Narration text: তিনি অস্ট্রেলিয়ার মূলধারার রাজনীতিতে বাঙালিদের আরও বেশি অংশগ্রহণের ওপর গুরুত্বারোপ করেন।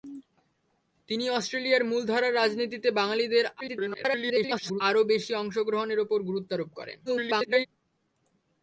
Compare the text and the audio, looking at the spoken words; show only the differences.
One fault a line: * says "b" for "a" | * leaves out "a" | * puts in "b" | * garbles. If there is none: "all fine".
* garbles
* garbles